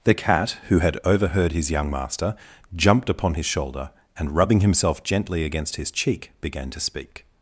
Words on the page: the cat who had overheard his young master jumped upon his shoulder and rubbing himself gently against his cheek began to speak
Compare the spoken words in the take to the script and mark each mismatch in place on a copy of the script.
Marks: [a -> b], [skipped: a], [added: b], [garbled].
the cat who had overheard his young master jumped upon his shoulder and rubbing himself gently against his cheek began to speak